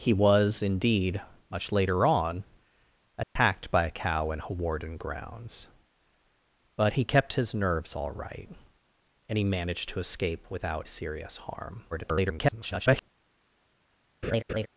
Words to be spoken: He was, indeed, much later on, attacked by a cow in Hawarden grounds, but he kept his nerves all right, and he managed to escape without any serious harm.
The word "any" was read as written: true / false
false